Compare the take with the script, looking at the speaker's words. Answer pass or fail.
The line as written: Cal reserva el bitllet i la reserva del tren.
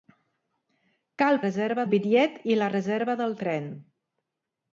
pass